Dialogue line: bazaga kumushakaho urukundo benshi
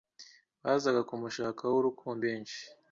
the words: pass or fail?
pass